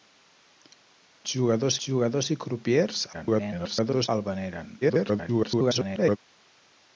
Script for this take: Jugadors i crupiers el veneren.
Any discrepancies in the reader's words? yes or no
yes